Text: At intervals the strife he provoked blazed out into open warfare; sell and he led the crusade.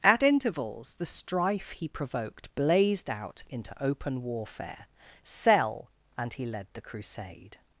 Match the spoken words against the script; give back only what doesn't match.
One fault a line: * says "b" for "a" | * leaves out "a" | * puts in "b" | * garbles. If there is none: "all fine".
all fine